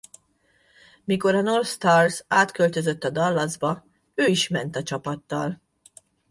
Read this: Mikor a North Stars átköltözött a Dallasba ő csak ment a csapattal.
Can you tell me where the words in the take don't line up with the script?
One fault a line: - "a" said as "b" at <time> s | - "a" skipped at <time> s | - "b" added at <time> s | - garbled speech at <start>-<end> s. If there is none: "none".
- "csak" said as "is" at 4.2 s